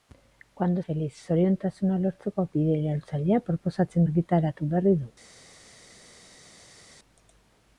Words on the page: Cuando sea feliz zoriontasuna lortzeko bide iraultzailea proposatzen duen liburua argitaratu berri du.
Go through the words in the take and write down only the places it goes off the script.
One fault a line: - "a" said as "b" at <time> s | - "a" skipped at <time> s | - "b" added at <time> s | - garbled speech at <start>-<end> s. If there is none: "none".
- "sea" skipped at 0.8 s
- "duen liburua" skipped at 4.1 s